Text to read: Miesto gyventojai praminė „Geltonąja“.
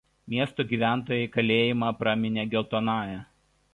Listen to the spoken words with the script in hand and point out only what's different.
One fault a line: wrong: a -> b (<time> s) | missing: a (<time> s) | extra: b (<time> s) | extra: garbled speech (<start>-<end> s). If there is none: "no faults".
extra: kalėjimą (1.4 s)